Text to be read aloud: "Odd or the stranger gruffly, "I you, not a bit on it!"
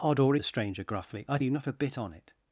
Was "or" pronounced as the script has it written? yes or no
yes